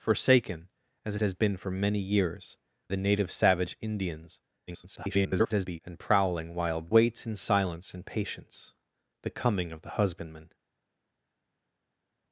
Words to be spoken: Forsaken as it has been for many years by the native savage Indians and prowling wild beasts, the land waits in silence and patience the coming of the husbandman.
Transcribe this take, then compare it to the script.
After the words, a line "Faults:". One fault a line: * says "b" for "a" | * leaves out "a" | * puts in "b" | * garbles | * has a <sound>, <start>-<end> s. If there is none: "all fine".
Forsaken as it has been for many years the native savage Indians [garbled] and prowling wild waits in silence and patience the coming of the husbandman.
Faults:
* leaves out "by"
* garbles
* leaves out "beasts the land"